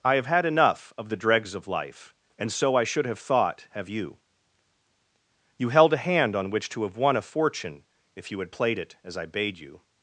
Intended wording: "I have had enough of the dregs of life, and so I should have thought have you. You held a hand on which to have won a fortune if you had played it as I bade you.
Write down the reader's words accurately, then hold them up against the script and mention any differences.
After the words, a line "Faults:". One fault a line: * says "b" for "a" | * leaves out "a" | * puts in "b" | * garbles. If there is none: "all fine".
"I have had enough of the dregs of life, and so I should have thought have you. You held a hand on which to have won a fortune if you had played it as I bade you.
Faults:
all fine